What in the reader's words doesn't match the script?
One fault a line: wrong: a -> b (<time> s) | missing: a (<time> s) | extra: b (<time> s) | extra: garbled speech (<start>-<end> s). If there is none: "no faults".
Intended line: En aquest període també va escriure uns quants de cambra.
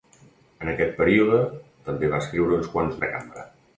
no faults